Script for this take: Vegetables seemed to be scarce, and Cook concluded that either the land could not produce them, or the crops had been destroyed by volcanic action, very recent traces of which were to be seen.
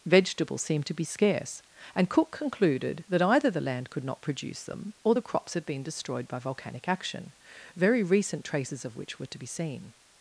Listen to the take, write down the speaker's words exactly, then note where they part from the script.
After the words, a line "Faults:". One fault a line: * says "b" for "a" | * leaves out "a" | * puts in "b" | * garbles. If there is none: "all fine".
Vegetables seemed to be scarce, and Cook concluded that either the land could not produce them, or the crops had been destroyed by volcanic action, very recent traces of which were to be seen.
Faults:
all fine